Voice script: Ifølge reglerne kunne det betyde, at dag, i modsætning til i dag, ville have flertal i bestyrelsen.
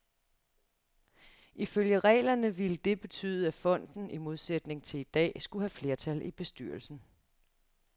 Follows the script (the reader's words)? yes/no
no